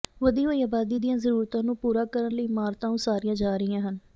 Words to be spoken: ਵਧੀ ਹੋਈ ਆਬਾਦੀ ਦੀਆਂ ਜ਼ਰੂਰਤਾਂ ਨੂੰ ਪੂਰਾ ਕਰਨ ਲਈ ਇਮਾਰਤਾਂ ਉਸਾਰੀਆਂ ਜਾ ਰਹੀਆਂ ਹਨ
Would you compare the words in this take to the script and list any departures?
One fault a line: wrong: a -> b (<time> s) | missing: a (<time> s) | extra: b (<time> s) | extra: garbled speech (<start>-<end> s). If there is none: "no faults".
no faults